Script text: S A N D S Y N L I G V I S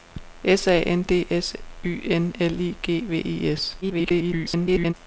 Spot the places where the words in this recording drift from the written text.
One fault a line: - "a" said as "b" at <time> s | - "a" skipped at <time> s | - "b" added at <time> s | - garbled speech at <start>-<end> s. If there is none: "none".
- garbled speech at 3.8-4.9 s